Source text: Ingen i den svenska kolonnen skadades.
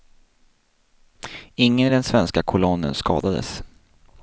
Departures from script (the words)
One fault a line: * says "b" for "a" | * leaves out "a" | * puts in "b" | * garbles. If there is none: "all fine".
all fine